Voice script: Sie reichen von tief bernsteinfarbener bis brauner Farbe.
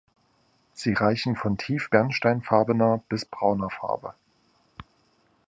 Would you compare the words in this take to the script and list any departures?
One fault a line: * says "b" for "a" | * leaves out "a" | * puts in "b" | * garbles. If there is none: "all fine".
all fine